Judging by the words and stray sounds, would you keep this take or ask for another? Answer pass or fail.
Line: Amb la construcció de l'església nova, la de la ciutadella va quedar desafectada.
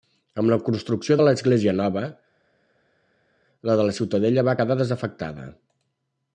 pass